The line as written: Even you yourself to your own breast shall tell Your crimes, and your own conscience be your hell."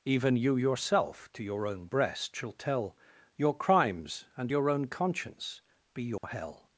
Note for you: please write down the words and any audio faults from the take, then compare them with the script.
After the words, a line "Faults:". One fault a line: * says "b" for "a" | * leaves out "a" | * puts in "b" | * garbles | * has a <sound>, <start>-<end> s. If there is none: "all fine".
Even you yourself to your own breast shall tell Your crimes, and your own conscience be your hell."
Faults:
* has a dropout, 6.2-6.2 s